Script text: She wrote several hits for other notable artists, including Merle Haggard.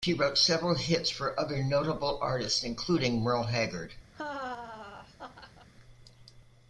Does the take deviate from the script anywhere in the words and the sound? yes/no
yes